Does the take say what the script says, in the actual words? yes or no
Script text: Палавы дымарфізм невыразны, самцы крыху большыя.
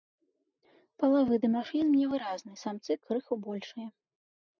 yes